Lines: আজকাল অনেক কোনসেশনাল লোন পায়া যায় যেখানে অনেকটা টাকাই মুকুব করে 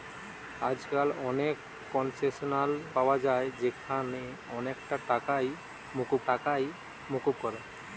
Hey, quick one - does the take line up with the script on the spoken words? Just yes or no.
no